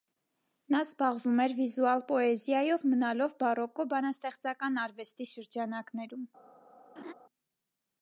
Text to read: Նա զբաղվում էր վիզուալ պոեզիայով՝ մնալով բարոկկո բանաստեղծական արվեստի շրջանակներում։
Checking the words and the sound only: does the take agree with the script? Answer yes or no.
no